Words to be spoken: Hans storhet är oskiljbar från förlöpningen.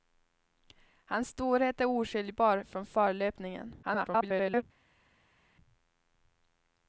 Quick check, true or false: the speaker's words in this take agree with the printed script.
false